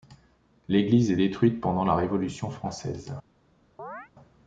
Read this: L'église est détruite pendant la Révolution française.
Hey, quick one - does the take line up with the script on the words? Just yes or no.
yes